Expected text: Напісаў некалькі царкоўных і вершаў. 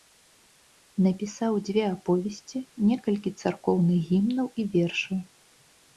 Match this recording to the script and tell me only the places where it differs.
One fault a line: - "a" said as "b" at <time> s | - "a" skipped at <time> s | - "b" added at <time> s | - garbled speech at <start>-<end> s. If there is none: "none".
- "дзве аповесці" added at 1.7 s
- "гімнаў" added at 4.1 s